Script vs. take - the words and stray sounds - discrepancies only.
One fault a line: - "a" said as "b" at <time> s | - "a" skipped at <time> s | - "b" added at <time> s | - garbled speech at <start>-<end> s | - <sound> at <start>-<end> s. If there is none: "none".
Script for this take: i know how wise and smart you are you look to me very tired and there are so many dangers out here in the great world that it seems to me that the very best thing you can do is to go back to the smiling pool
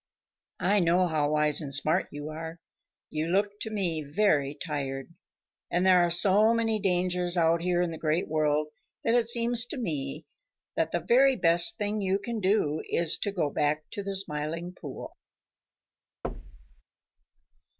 - thud at 16.2-16.8 s